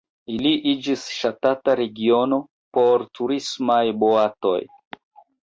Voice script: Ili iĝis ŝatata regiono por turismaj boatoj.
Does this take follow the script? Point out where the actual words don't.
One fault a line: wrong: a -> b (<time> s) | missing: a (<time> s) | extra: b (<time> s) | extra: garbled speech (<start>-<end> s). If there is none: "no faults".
no faults